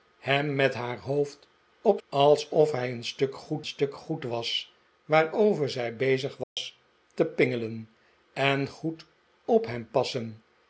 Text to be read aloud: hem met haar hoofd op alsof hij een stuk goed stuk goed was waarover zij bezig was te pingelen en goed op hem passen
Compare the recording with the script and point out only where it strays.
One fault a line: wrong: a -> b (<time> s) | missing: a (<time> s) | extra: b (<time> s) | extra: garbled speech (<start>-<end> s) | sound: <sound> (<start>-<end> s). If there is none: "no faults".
sound: dropout (6.4-6.6 s)